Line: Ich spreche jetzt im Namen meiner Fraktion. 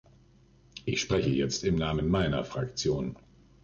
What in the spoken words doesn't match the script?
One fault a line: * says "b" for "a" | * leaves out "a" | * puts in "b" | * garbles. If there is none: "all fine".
all fine